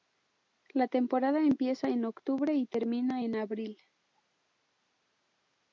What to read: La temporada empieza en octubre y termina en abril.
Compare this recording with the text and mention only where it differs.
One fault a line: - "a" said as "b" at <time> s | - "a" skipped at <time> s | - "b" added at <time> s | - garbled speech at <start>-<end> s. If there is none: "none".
none